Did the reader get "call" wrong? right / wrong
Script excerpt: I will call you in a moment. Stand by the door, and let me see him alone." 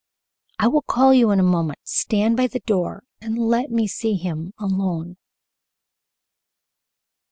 right